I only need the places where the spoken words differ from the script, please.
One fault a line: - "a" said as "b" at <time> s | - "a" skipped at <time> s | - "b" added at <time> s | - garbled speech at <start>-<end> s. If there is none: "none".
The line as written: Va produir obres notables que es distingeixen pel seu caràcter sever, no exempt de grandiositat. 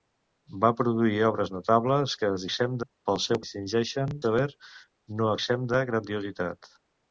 - "distingeixen" said as "exempt" at 2.5 s
- "caràcter" said as "distingeixen" at 3.4 s